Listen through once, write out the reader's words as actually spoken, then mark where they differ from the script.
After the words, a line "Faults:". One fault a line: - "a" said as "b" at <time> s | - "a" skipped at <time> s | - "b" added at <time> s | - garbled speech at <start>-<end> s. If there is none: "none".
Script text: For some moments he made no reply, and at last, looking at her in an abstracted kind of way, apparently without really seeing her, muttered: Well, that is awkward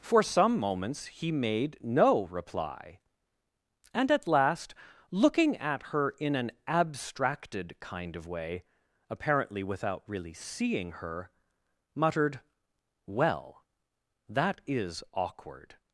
For some moments he made no reply, and at last, looking at her in an abstracted kind of way, apparently without really seeing her, muttered: Well, that is awkward
Faults:
none